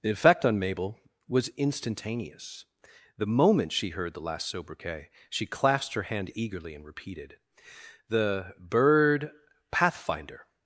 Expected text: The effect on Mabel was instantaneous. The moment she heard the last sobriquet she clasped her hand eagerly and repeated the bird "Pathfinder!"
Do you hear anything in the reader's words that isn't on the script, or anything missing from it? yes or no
no